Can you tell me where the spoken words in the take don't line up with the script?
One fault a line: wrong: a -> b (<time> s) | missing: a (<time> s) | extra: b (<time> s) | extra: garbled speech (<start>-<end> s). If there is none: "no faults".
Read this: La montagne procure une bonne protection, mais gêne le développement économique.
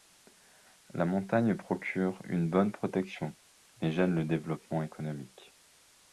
no faults